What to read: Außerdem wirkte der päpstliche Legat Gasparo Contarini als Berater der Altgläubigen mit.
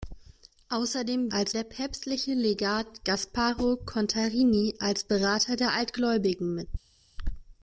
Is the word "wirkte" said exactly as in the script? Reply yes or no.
no